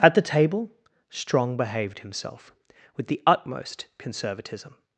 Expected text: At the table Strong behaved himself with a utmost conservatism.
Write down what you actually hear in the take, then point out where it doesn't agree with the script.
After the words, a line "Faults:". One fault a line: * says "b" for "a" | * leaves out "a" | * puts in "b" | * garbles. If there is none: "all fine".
At the table Strong behaved himself with the utmost conservatism.
Faults:
* says "the" for "a"